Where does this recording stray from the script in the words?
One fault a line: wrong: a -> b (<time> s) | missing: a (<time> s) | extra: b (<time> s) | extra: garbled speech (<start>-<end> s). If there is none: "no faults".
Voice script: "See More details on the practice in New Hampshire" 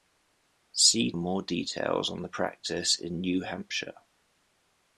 no faults